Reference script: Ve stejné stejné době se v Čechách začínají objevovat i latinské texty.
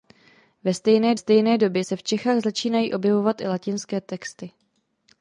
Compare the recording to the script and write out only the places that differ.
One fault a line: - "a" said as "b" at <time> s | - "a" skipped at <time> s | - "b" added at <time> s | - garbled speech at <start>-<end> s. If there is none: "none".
none